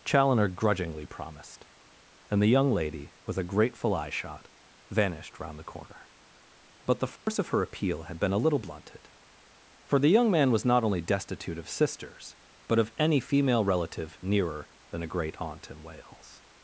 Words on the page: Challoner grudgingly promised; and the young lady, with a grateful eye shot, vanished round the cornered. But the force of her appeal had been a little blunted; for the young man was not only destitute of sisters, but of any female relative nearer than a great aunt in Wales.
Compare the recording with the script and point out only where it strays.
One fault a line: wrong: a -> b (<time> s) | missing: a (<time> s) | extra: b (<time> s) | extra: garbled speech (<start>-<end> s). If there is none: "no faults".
wrong: cornered -> corner (5.6 s)